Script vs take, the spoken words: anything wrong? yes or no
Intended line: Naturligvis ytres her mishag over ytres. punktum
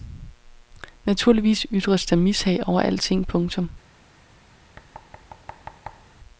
yes